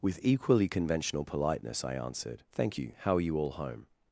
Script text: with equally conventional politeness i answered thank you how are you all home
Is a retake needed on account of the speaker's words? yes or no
no